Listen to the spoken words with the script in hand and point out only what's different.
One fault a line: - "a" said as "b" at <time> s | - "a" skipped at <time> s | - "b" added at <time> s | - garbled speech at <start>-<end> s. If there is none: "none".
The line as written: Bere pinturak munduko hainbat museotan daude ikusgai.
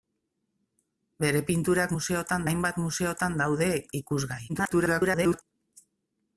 - "munduko" said as "museotan" at 2.0 s
- garbled speech at 4.5-5.4 s